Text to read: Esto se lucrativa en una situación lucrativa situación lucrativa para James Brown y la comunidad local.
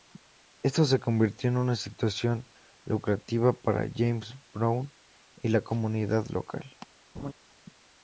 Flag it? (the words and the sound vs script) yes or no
yes